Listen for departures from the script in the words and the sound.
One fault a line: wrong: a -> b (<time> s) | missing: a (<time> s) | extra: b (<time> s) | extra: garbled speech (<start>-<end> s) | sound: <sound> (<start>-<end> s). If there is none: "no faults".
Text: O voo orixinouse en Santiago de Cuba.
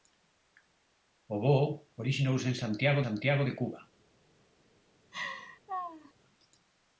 extra: Santiago (3.0 s)
sound: laugh (5.1-6.1 s)